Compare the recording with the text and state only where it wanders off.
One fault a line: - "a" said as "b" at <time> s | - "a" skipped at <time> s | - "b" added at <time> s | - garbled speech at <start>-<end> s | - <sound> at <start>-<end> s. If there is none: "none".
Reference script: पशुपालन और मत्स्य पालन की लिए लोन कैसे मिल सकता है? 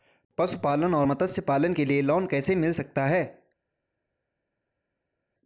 - "की" said as "के" at 1.7 s